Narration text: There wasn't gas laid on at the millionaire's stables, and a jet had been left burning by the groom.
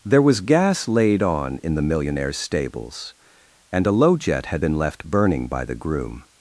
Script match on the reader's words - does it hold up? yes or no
no